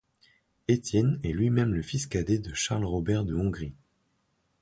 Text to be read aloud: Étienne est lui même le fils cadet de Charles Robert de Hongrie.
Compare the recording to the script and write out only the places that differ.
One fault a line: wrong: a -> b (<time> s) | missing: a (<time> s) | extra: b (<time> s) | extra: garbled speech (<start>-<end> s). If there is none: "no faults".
no faults